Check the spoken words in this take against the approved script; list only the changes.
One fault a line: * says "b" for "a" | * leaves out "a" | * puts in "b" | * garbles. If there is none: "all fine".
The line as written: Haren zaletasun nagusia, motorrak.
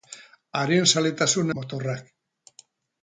* leaves out "nagusia"